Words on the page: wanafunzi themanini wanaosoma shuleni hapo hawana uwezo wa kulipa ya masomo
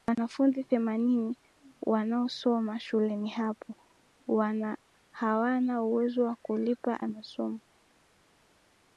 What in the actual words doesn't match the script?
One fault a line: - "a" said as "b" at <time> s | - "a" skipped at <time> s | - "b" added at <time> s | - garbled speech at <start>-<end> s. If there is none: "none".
none